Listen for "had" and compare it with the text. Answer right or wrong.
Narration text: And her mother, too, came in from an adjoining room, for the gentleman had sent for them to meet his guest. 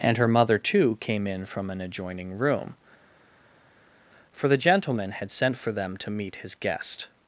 right